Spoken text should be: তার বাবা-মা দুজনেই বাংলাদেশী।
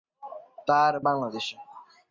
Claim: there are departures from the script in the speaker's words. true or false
true